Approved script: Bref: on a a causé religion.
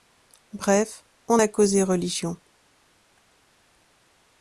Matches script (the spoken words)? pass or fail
fail